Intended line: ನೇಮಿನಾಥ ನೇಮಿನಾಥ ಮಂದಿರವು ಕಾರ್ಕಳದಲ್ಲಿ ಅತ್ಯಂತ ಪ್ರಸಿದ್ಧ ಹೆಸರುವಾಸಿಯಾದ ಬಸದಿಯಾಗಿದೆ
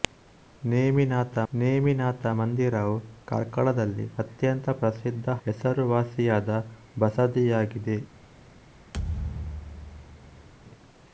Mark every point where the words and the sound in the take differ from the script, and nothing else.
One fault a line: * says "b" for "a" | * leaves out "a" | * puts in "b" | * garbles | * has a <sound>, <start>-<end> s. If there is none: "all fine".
* has a thud, 8.9-10.5 s